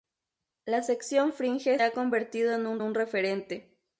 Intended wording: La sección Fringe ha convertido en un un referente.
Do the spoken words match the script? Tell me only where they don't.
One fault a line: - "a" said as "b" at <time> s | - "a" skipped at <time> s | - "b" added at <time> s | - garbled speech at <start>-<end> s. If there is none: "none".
none